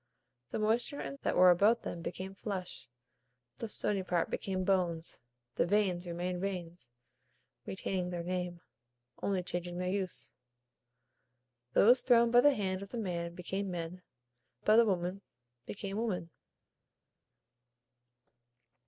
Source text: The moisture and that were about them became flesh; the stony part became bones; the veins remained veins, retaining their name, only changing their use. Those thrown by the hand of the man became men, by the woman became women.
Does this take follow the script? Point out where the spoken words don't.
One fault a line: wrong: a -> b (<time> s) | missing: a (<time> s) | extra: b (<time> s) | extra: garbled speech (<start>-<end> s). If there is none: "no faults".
no faults